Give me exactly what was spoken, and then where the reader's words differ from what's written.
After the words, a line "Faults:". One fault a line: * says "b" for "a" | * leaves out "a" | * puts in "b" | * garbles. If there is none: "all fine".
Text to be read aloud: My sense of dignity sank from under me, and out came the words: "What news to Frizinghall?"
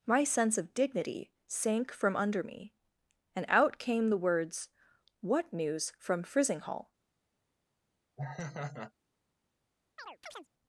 My sense of dignity sank from under me, and out came the words: "What news from Frizinghall?"
Faults:
* says "from" for "to"